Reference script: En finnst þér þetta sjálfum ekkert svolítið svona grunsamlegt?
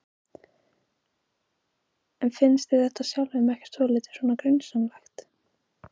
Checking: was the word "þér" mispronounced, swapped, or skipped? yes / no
no